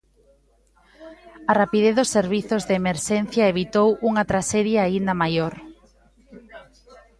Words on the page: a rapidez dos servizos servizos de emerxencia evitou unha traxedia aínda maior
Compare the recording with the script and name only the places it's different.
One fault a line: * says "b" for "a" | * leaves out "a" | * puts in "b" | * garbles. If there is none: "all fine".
* leaves out "servizos"